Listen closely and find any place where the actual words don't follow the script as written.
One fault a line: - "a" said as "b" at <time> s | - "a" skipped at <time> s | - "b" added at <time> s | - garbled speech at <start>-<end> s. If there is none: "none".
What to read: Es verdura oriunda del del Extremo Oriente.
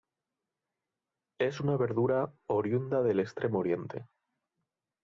- "una" added at 1.6 s
- "del" skipped at 3.2 s